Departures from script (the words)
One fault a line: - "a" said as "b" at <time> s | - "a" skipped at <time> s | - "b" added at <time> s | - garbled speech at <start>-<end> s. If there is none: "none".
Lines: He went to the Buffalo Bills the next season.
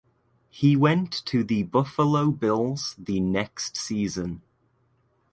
none